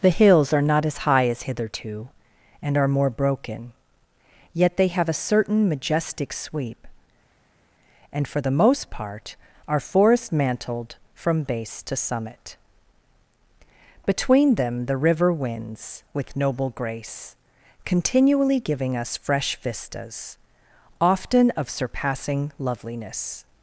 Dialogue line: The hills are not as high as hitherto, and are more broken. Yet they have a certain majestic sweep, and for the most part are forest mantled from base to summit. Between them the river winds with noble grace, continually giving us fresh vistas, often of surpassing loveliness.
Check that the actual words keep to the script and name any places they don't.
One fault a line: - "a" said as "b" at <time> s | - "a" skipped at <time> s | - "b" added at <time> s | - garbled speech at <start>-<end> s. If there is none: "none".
none